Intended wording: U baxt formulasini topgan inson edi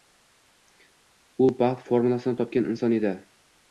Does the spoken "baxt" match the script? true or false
true